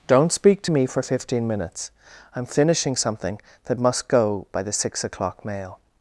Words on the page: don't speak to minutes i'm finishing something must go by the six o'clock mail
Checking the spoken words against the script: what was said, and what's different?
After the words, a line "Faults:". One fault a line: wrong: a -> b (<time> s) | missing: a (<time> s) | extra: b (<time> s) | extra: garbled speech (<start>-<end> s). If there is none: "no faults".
don't speak to me for fifteen minutes i'm finishing something that must go by the six o'clock mail
Faults:
extra: me for fifteen (0.7 s)
extra: that (3.6 s)